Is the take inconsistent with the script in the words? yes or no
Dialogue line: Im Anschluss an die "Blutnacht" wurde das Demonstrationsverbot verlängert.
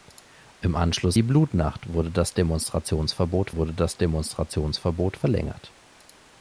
yes